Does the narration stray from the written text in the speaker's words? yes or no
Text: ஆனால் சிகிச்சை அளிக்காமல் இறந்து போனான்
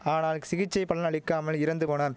yes